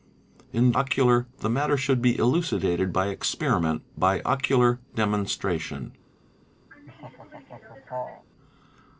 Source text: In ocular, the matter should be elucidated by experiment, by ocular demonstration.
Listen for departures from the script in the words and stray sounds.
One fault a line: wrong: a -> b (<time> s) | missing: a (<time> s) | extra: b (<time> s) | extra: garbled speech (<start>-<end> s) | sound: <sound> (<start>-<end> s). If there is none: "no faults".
sound: laugh (6.7-8.3 s)